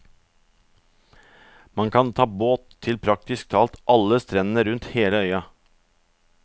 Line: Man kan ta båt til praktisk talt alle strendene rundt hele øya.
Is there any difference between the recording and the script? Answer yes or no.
no